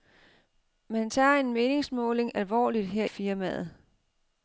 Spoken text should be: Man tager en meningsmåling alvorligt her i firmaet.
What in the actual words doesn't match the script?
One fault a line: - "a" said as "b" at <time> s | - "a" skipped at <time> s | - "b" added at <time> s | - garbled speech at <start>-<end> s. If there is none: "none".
- "i" skipped at 3.0 s